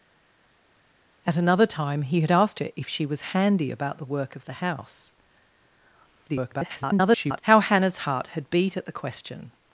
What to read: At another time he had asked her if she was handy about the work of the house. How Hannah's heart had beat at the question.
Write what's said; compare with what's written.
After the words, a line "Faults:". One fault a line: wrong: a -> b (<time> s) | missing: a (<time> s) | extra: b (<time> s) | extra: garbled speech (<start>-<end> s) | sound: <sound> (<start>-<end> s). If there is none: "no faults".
At another time he had asked her if she was handy about the work of the house. [garbled] How Hannah's heart had beat at the question.
Faults:
extra: garbled speech (6.3-7.4 s)